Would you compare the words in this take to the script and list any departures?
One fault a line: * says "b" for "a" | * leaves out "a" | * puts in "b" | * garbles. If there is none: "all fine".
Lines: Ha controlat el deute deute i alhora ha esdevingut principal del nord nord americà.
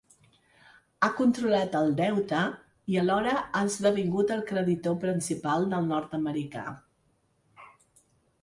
* leaves out "deute"
* puts in "el creditor"
* leaves out "nord"